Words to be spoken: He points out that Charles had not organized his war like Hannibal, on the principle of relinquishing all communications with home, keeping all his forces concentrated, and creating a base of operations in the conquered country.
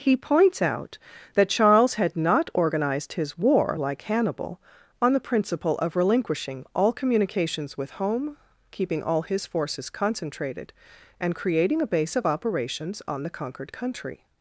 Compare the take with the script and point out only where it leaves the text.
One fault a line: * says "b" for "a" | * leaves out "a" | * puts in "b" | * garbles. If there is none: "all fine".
* says "on" for "in"